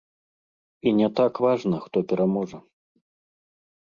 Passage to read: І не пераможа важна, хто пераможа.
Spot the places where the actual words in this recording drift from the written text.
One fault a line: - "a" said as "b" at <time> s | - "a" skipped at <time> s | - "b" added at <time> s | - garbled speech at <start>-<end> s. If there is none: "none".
- "пераможа" said as "так" at 1.2 s